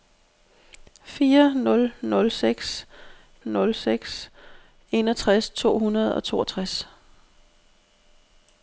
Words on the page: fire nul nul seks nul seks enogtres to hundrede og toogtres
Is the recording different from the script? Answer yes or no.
no